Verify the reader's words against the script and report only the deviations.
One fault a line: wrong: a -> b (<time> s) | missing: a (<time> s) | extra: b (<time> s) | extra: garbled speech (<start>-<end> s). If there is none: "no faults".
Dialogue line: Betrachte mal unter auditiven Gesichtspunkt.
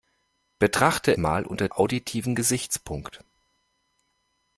no faults